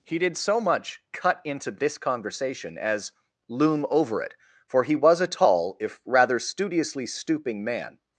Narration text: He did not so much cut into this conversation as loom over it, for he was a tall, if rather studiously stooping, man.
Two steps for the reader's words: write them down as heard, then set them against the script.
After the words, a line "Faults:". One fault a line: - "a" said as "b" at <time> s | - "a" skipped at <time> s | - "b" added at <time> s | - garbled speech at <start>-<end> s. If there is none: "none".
He did so much cut into this conversation as loom over it, for he was a tall, if rather studiously stooping, man.
Faults:
- "not" skipped at 0.3 s